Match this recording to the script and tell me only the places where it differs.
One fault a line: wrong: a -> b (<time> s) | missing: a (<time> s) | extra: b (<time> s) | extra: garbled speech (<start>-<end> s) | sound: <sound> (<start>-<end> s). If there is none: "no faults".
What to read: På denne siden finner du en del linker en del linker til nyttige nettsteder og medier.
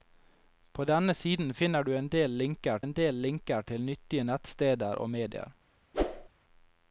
sound: whoosh (5.9-6.3 s)